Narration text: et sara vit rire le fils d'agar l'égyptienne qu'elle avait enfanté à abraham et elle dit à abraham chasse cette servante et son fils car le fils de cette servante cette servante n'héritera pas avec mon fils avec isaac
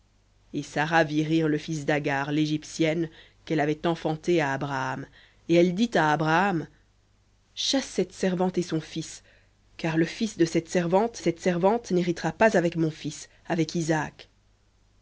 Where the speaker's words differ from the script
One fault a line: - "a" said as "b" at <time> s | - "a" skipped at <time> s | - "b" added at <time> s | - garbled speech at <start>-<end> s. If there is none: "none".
none